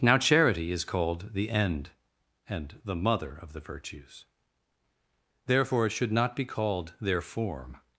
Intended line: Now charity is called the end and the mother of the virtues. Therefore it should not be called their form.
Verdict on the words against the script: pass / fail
pass